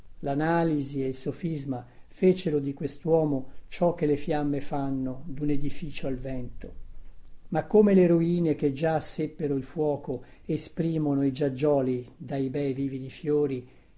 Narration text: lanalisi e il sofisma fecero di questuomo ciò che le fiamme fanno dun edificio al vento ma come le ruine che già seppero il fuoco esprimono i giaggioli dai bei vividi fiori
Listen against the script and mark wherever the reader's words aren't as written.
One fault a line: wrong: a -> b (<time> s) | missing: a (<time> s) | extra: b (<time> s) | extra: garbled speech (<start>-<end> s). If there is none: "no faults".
no faults